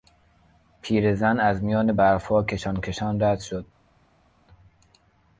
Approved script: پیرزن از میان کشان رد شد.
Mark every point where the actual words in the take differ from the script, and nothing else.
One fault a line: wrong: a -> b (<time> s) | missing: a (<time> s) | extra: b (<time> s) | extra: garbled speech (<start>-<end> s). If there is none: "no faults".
extra: برفها کشان (1.9 s)